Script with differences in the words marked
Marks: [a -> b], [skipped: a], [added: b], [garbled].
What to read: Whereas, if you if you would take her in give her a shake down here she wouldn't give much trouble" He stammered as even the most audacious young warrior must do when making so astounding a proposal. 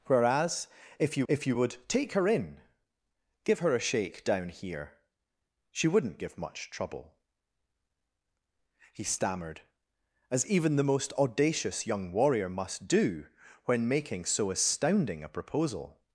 Whereas, if you if you would take her in give her a shake down here she wouldn't give much trouble" He stammered as even the most audacious young warrior must do when making so astounding a proposal.